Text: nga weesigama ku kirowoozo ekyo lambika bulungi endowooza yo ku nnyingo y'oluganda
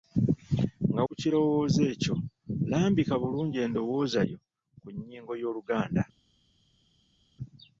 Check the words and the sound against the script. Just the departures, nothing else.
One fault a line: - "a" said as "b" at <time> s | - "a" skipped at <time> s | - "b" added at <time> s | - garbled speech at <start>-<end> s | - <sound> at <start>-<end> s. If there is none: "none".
- "weesigama" skipped at 1.0 s